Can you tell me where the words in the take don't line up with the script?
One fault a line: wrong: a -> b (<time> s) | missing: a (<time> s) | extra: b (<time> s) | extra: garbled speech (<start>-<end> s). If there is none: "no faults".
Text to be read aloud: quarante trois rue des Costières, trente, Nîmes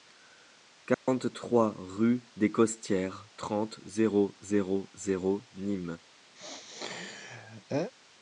extra: zéro zéro zéro (3.9 s)